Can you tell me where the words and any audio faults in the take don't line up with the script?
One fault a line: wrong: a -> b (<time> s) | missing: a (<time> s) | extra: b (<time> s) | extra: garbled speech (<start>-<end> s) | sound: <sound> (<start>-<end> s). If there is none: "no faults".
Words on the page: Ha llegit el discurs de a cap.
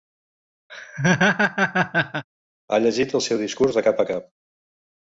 sound: laugh (0.7-2.2 s)
extra: seu (3.3 s)
extra: cap (3.9 s)